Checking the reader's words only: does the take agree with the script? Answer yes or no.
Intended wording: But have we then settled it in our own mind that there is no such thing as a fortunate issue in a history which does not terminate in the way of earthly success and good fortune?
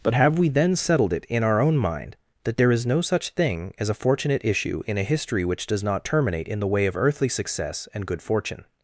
yes